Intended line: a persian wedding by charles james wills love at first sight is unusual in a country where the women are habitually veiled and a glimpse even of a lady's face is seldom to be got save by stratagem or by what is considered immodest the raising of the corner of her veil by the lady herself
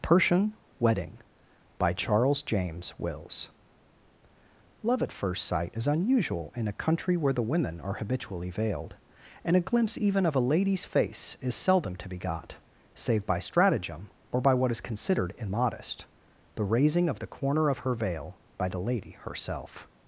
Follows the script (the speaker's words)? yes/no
no